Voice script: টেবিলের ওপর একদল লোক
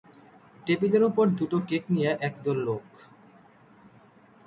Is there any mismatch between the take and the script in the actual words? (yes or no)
yes